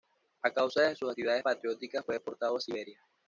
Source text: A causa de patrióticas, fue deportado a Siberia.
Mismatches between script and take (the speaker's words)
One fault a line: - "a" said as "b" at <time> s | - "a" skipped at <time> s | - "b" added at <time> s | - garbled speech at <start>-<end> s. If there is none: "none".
- "sus actividades" added at 0.9 s